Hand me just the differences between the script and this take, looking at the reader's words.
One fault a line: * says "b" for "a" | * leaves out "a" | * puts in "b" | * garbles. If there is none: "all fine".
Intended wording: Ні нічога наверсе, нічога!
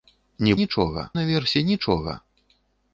all fine